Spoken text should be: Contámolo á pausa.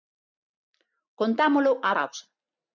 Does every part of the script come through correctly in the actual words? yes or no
yes